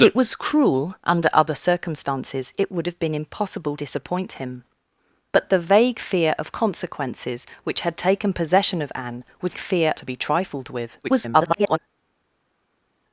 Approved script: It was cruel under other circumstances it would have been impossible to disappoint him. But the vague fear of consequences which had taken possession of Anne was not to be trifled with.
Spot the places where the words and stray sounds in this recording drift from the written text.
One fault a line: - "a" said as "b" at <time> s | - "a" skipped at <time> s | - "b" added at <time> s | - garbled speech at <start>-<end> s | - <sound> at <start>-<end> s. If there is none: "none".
- "to" skipped at 3.7 s
- "not" said as "fear" at 9.6 s
- garbled speech at 11.0-11.8 s